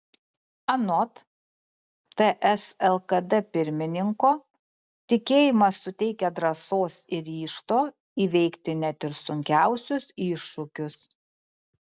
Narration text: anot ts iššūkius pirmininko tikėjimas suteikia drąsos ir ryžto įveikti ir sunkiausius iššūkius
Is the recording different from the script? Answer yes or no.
yes